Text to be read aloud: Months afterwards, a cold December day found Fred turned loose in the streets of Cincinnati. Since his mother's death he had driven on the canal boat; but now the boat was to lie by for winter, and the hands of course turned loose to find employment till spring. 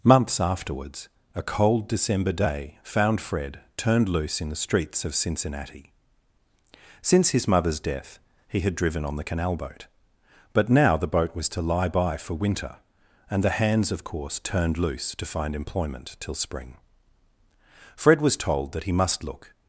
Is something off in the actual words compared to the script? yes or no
yes